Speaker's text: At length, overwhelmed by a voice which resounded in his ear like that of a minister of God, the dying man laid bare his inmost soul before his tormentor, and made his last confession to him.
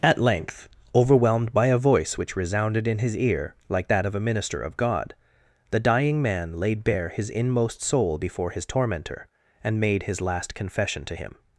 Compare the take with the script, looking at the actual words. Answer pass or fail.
pass